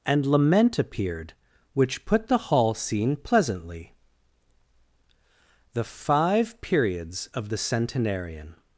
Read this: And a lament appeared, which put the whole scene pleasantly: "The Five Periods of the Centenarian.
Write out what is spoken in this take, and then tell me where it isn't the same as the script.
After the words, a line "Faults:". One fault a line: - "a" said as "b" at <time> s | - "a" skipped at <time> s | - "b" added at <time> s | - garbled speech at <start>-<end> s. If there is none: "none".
And lament appeared, which put the hall scene pleasantly: "The Five Periods of the Centenarian.
Faults:
- "a" skipped at 0.3 s
- "whole" said as "hall" at 2.4 s